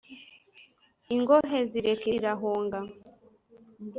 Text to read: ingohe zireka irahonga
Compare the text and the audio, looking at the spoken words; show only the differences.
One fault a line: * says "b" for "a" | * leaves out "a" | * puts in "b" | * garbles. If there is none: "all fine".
all fine